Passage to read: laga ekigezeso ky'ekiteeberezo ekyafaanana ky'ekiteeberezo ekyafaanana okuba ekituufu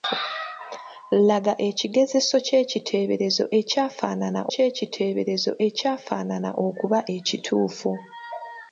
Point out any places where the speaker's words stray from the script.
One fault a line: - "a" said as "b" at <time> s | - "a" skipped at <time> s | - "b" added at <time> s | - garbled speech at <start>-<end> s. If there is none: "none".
none